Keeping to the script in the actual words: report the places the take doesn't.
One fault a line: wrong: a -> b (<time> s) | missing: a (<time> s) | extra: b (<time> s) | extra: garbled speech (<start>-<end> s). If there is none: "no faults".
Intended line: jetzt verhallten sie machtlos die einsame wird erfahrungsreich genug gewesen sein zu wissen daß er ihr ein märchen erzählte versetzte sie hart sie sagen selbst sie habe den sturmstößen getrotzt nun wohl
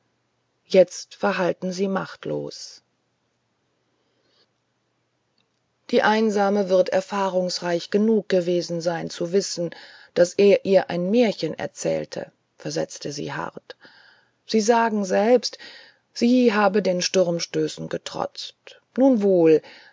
no faults